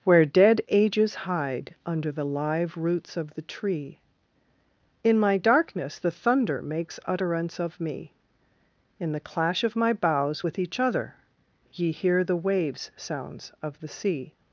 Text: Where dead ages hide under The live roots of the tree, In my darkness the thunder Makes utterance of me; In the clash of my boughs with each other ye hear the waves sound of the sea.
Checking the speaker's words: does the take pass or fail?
fail